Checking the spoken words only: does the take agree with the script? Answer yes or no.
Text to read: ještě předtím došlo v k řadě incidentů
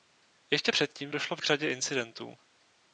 yes